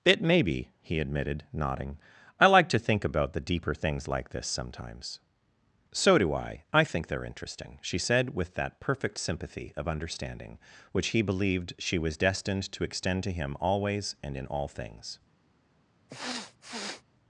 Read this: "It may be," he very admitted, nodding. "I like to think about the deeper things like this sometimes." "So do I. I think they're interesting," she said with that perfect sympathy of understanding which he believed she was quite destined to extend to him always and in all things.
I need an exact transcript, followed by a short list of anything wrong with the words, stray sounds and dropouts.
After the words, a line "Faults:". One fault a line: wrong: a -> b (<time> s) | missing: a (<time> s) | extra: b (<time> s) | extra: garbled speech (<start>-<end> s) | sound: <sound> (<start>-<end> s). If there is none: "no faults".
"It may be," he admitted, nodding. "I like to think about the deeper things like this sometimes." "So do I. I think they're interesting," she said with that perfect sympathy of understanding which he believed she was destined to extend to him always and in all things.
Faults:
missing: very (1.0 s)
missing: quite (12.2 s)
sound: sniff (16.1-17.0 s)